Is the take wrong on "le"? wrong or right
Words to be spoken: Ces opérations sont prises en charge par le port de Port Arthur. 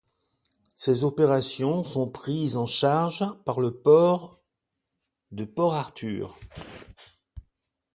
right